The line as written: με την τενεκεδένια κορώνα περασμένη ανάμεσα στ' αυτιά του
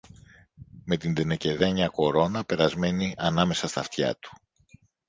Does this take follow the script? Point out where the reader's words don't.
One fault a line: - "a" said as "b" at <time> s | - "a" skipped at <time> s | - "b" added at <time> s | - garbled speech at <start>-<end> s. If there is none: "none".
none